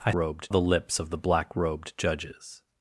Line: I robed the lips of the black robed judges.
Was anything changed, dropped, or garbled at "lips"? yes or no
no